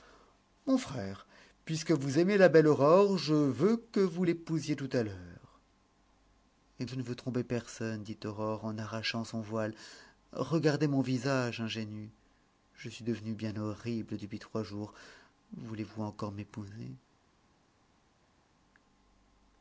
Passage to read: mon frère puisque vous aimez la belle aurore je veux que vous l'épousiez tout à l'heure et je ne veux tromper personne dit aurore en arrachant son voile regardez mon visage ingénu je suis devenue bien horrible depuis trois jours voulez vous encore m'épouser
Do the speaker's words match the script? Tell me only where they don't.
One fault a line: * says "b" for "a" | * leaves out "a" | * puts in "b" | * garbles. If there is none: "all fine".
all fine